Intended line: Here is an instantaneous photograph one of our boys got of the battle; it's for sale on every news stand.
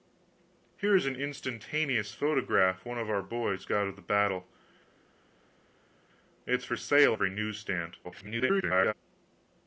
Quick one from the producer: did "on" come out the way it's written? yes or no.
no